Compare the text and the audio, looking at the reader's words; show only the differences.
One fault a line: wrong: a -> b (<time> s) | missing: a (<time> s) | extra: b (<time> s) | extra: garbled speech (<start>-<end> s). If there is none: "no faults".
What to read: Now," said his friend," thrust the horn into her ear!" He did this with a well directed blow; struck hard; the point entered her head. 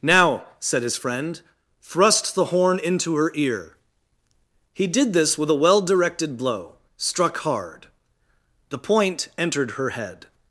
no faults